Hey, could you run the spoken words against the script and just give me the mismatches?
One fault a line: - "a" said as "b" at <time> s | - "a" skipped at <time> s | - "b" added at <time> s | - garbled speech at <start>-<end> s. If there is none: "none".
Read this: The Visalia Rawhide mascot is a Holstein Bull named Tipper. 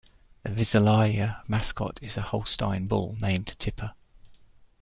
- "Rawhide" skipped at 1.4 s